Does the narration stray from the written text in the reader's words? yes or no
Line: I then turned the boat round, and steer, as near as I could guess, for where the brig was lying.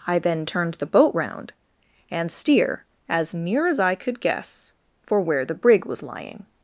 no